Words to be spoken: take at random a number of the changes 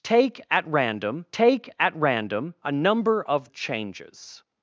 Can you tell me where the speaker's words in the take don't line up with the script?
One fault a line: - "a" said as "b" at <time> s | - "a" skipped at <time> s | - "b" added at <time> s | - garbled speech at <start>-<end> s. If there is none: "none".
- "take at random" added at 1.3 s
- "the" skipped at 3.5 s